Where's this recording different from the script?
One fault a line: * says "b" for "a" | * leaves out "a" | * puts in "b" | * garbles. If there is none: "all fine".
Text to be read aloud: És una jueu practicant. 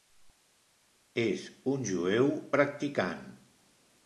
* says "un" for "una"